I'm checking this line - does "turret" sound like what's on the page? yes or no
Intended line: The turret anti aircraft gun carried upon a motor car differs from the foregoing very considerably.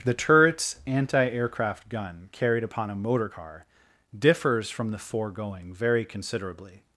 no